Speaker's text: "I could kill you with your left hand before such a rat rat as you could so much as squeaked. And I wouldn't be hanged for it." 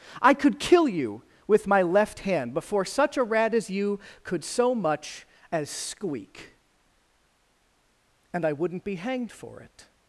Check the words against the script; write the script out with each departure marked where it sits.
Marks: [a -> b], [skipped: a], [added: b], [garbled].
"I could kill you with [your -> my] left hand before such a rat [skipped: rat] as you could so much as [squeaked. -> squeak] And I wouldn't be hanged for it."